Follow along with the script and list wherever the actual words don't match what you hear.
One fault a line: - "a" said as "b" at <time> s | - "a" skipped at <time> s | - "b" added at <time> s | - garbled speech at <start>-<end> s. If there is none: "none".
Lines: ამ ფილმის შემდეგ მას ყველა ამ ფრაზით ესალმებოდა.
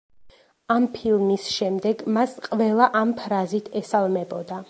none